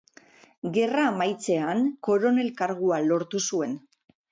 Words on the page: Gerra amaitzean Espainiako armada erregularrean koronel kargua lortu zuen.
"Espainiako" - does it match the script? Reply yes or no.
no